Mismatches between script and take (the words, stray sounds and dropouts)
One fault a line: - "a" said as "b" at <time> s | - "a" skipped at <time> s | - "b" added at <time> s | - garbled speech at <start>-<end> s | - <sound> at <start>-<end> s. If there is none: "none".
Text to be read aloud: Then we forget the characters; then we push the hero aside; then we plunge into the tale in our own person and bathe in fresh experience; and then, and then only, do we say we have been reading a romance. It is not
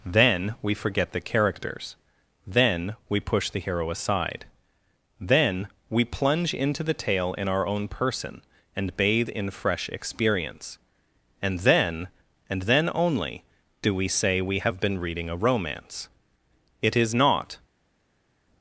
none